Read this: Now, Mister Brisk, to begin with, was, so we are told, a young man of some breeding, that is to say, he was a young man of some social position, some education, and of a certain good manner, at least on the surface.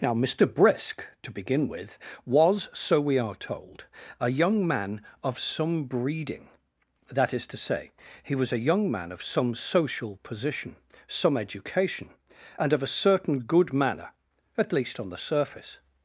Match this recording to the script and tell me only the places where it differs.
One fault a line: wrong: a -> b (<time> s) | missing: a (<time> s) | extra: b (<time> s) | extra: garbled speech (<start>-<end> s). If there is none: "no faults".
no faults